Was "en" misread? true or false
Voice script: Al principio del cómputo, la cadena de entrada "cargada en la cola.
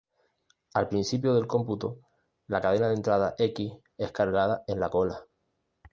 false